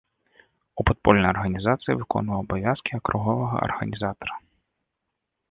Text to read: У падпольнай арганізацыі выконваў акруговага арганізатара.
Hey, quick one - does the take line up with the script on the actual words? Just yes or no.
no